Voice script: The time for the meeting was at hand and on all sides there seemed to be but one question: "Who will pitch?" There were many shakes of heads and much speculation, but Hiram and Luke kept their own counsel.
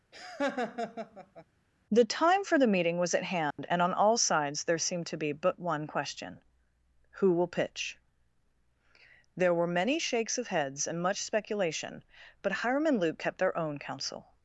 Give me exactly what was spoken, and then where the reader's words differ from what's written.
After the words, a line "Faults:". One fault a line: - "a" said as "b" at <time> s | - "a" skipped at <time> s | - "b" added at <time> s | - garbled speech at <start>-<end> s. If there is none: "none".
The time for the meeting was at hand and on all sides there seemed to be but one question: "Who will pitch?" There were many shakes of heads and much speculation, but Hiram and Luke kept their own counsel.
Faults:
none